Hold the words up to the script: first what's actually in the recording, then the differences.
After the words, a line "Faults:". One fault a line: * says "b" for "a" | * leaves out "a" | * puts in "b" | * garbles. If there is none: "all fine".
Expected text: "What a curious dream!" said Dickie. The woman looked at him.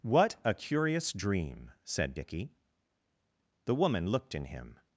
"What a curious dream!" said Dickie. The woman looked in him.
Faults:
* says "in" for "at"